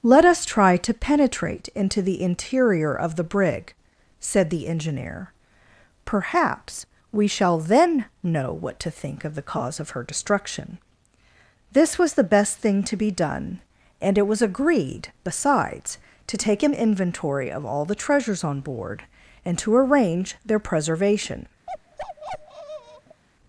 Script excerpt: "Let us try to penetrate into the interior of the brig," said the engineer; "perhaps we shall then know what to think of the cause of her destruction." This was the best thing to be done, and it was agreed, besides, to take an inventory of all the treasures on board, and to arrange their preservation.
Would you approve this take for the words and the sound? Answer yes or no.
no